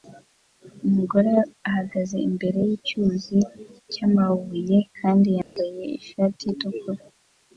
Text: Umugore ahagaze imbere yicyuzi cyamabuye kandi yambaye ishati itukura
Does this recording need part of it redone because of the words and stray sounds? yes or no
yes